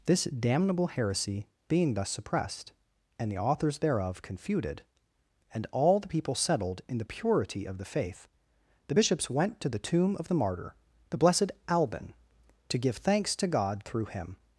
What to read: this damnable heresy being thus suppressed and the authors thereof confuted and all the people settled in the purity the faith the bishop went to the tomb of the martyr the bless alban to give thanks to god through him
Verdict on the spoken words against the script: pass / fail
fail